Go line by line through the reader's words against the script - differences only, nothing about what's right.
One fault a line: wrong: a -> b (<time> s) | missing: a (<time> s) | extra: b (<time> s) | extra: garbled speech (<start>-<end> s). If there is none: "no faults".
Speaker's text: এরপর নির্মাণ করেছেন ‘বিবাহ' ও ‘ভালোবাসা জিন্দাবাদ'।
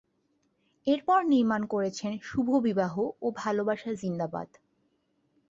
extra: শুভ (2.2 s)